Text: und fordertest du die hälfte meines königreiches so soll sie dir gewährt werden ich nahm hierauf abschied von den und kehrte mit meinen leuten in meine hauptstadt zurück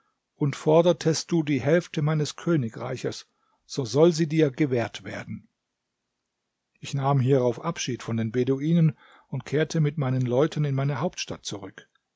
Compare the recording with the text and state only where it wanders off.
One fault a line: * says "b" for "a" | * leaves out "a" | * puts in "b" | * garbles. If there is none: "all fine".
* puts in "beduinen"